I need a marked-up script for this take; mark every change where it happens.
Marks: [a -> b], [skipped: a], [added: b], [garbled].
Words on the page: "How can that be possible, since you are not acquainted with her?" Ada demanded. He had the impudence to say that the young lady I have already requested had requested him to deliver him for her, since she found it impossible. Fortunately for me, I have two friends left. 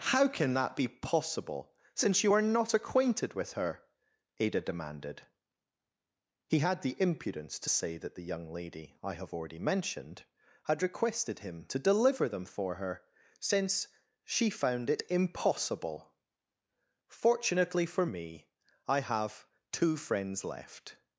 "How can that be possible, since you are not acquainted with her?" Ada demanded. He had the impudence to say that the young lady I have already [requested -> mentioned] had requested him to deliver [him -> them] for her, since she found it impossible. Fortunately for me, I have two friends left.